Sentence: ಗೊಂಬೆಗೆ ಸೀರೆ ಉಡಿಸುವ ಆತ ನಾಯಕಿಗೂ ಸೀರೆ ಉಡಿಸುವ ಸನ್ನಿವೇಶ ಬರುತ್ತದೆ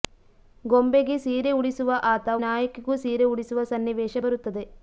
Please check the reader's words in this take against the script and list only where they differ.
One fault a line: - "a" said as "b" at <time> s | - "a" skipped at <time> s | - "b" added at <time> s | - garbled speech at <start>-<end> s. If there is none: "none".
none